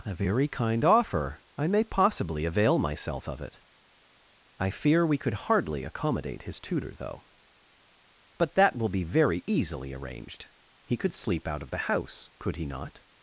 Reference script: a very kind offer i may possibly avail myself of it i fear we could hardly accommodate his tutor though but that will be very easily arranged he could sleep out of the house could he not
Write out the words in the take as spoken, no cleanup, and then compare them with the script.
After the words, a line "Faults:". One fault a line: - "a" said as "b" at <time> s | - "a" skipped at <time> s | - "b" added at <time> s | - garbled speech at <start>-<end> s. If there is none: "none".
a very kind offer i may possibly avail myself of it i fear we could hardly accommodate his tutor though but that will be very easily arranged he could sleep out of the house could he not
Faults:
none